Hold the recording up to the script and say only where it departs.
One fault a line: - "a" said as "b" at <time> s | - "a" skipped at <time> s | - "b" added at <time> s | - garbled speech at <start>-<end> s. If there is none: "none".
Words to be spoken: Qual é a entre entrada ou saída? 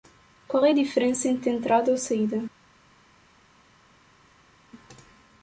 - "diferença" added at 0.7 s